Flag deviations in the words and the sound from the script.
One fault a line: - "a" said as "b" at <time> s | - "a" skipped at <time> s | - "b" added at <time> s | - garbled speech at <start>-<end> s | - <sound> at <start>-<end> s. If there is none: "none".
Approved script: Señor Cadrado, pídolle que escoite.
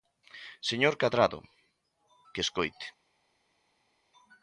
- "pídolle" skipped at 1.4 s